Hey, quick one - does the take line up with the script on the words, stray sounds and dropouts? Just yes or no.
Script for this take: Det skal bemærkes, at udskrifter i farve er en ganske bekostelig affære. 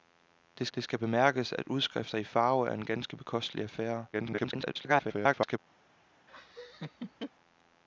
no